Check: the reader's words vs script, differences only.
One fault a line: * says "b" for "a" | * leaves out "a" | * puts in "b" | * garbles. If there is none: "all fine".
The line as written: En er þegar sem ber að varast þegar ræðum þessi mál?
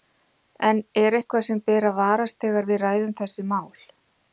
* says "eitthvað" for "þegar"
* puts in "við"